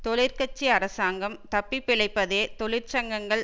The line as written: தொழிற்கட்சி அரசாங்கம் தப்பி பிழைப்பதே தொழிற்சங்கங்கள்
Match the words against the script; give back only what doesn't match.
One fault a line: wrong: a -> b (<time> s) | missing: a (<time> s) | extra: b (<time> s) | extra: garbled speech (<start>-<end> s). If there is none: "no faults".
no faults